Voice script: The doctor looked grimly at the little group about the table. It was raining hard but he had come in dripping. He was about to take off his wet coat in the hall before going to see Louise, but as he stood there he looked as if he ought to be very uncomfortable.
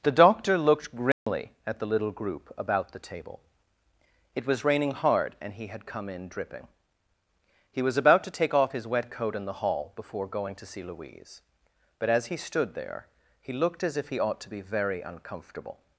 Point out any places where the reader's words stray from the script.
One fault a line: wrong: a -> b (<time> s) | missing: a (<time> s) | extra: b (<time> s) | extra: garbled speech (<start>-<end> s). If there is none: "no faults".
wrong: but -> and (5.4 s)